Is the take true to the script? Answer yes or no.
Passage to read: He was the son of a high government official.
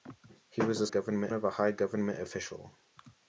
no